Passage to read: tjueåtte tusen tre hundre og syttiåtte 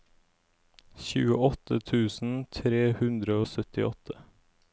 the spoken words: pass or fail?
pass